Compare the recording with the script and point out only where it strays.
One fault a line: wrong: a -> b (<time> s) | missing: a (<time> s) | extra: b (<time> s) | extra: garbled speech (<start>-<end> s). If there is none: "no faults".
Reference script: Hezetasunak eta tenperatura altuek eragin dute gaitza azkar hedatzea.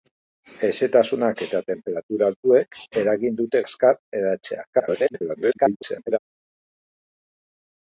missing: gaitza (3.6 s)
extra: garbled speech (4.7-6.2 s)